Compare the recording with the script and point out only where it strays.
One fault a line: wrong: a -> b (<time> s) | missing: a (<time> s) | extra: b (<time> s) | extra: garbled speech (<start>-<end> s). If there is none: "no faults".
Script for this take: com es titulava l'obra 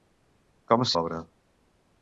missing: titulava (0.9 s)